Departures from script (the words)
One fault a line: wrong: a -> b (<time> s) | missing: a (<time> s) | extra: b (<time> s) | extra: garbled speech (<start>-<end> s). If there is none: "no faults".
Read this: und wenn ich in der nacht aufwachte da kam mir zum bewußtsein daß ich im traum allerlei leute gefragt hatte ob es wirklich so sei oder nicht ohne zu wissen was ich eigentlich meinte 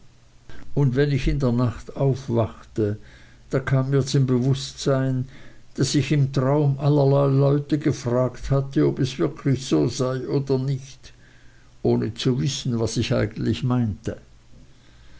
no faults